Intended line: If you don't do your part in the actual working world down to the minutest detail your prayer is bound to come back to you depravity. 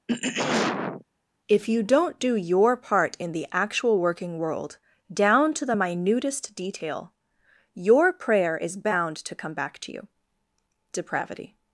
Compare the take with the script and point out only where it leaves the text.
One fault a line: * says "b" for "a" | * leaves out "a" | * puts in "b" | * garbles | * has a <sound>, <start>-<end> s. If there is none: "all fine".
* has a throat clearing, 0.1-1.0 s